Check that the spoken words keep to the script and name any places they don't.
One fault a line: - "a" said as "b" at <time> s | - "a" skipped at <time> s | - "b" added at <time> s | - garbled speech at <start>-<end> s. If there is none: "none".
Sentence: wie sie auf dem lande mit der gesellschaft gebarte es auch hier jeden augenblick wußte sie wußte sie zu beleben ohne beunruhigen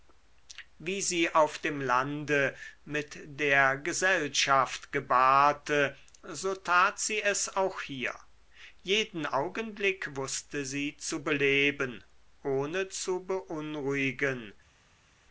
- "so tat sie" added at 6.2 s
- "wußte sie" skipped at 11.0 s
- "zu" added at 12.9 s